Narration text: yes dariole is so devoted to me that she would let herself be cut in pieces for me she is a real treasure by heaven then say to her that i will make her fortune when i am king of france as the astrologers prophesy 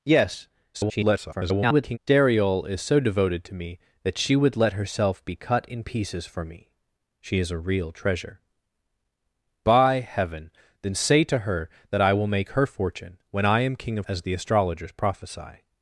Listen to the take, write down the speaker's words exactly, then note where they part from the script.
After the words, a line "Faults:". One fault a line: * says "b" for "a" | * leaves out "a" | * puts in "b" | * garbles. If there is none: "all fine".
yes [garbled] dariole is so devoted to me that she would let herself be cut in pieces for me she is a real treasure by heaven then say to her that i will make her fortune when i am king of as the astrologers prophesy
Faults:
* garbles
* leaves out "france"